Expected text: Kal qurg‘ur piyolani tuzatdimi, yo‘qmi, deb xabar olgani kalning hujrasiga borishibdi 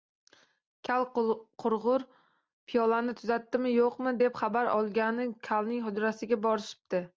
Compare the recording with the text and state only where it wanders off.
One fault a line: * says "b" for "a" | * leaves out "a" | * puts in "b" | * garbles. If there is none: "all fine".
all fine